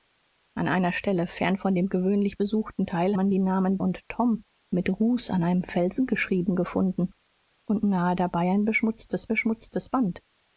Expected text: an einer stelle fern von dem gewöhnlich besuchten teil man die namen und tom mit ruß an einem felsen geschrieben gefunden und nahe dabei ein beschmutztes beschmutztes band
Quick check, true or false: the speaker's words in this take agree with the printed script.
true